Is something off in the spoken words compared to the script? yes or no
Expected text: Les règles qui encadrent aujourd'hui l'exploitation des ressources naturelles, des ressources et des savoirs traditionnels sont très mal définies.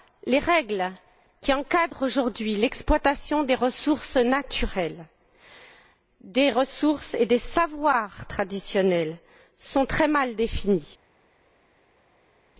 no